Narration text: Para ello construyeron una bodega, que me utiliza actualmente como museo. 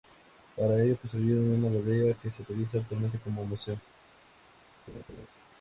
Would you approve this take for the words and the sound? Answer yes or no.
no